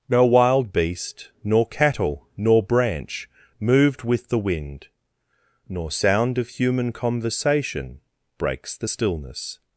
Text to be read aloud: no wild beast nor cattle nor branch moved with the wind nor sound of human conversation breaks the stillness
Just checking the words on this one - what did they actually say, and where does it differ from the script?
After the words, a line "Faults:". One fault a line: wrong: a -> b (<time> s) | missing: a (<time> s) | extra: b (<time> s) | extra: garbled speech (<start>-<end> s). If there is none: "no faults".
no wild beast nor cattle nor branch moved with the wind nor sound of human conversation breaks the stillness
Faults:
no faults